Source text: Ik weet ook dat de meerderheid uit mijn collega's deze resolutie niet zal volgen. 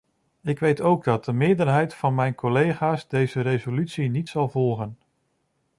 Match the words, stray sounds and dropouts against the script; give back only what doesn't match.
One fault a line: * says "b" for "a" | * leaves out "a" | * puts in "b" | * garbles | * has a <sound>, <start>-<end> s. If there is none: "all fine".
* says "van" for "uit"